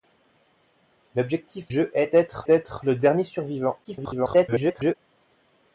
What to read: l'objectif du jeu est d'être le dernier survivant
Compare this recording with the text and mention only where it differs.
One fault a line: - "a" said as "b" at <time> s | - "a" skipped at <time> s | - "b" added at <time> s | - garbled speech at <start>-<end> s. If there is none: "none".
- "du" skipped at 1.8 s
- "d'être" added at 2.4 s
- garbled speech at 3.8-5.0 s